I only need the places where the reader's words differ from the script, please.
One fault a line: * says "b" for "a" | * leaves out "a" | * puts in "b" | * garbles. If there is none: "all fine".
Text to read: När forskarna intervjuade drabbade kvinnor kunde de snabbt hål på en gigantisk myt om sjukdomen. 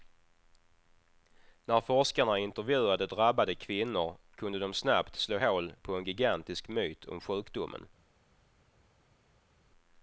* puts in "slå"